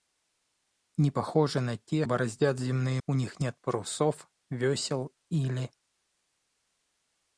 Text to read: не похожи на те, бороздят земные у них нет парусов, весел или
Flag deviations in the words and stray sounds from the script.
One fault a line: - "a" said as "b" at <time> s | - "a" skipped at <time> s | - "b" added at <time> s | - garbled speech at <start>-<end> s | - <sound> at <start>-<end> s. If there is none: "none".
none